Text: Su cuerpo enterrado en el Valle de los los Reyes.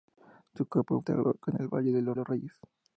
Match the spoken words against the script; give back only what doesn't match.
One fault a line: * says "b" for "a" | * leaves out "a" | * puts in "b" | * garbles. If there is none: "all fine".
all fine